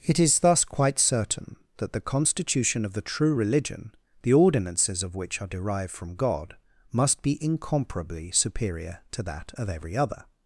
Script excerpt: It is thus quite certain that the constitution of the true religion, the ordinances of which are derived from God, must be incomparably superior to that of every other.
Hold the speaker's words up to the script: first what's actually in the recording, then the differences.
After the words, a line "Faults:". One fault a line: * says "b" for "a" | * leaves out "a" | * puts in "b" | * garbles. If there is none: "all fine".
It is thus quite certain that the constitution of the true religion, the ordinances of which are derived from God, must be incomparably superior to that of every other.
Faults:
all fine